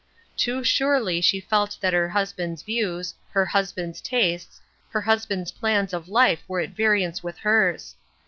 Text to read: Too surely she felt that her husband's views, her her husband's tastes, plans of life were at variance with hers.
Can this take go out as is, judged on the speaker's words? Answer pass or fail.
fail